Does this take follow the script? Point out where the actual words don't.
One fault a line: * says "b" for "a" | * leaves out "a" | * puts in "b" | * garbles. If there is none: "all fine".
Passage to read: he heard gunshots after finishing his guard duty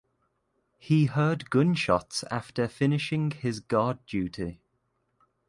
all fine